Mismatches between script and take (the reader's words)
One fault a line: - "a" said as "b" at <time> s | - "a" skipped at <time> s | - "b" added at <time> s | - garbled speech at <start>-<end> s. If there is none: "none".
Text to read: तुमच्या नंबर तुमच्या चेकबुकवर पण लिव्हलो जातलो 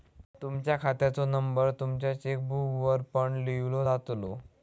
- "खात्याचो" added at 0.8 s